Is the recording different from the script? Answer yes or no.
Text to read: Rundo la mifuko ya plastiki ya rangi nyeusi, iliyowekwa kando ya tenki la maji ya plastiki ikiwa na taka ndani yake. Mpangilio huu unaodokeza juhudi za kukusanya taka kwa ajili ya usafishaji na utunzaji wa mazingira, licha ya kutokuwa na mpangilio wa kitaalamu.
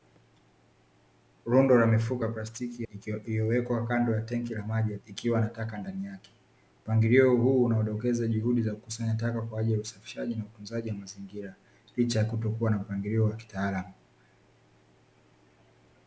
yes